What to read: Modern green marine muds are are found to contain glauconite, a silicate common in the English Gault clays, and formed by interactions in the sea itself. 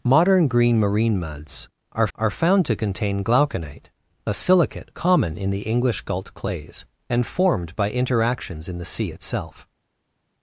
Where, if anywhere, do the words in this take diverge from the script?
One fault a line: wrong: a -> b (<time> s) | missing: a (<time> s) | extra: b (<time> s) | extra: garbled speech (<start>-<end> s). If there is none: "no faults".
no faults